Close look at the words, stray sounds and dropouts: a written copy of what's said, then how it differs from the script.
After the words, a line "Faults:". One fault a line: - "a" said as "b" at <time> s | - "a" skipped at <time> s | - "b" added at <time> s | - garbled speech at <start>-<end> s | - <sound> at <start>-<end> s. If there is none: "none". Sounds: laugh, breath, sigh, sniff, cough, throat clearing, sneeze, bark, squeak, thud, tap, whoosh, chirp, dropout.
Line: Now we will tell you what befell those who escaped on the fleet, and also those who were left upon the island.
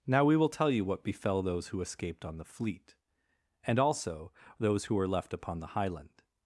Now we will tell you what befell those who escaped on the fleet, and also those who were left upon the highland.
Faults:
- "island" said as "highland" at 5.7 s